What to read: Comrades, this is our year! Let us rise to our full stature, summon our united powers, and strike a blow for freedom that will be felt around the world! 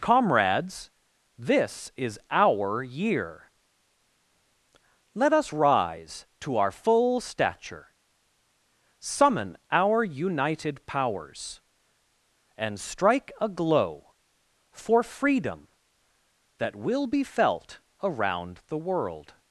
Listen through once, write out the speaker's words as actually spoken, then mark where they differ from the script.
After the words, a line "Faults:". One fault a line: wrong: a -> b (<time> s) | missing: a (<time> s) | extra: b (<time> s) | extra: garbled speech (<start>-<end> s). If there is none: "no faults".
Comrades, this is our year! Let us rise to our full stature, summon our united powers, and strike a glow for freedom that will be felt around the world!
Faults:
wrong: blow -> glow (13.5 s)